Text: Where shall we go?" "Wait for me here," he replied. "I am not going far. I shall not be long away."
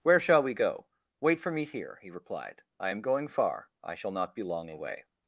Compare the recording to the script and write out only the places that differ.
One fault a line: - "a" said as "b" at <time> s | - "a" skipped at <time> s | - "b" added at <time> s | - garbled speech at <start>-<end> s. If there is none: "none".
- "not" skipped at 3.0 s